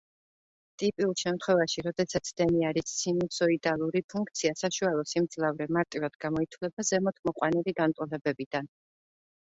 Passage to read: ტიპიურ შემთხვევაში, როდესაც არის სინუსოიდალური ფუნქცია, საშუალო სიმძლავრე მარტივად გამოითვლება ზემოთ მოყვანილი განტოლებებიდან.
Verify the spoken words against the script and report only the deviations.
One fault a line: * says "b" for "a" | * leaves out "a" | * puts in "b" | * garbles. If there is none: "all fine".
* puts in "დენი"